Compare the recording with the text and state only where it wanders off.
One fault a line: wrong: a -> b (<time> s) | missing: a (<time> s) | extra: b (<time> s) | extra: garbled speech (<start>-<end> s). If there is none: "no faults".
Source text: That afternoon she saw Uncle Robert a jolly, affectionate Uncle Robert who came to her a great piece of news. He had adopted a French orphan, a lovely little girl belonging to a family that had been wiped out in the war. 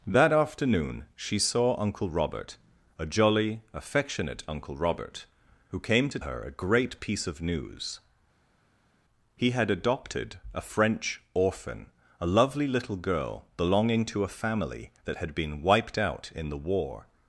no faults